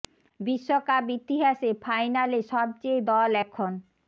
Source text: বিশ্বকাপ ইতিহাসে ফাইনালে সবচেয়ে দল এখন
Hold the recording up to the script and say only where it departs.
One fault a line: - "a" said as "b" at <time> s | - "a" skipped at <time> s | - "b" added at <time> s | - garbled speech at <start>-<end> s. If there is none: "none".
none